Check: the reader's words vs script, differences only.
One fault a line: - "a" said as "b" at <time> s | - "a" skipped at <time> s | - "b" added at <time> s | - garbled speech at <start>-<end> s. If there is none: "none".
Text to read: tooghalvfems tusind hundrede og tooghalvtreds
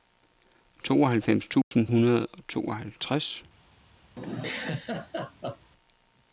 none